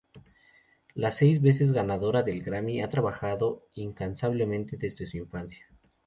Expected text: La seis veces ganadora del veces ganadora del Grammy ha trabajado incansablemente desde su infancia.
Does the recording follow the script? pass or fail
fail